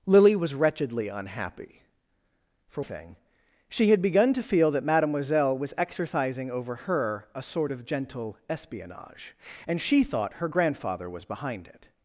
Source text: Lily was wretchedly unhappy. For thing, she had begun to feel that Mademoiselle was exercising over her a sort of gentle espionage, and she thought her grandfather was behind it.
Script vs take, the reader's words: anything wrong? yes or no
no